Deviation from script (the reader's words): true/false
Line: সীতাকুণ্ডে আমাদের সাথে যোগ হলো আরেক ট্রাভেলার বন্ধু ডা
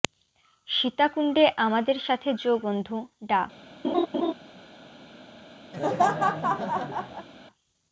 true